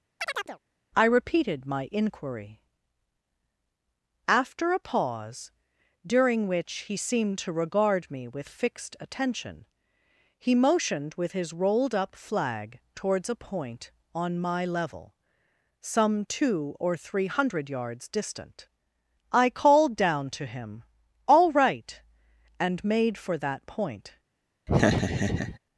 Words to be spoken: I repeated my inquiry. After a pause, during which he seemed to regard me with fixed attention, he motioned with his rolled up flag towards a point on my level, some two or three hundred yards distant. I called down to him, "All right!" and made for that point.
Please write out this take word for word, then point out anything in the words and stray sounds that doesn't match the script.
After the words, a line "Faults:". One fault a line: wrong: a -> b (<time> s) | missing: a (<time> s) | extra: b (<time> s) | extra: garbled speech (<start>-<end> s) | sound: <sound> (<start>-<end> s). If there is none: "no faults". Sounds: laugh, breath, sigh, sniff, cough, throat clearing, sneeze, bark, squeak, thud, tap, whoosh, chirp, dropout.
I repeated my inquiry. After a pause, during which he seemed to regard me with fixed attention, he motioned with his rolled up flag towards a point on my level, some two or three hundred yards distant. I called down to him, "All right!" and made for that point.
Faults:
sound: chirp (0.2-0.6 s)
sound: laugh (24.7-25.6 s)